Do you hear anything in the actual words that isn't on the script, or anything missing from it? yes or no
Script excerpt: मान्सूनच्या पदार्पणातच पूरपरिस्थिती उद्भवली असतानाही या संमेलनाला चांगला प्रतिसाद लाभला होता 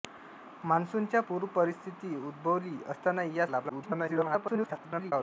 yes